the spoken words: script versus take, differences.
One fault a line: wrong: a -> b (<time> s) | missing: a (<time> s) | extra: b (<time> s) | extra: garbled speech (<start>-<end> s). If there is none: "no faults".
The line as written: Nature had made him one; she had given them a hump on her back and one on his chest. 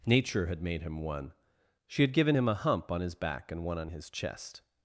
wrong: them -> him (2.3 s)
wrong: her -> his (3.0 s)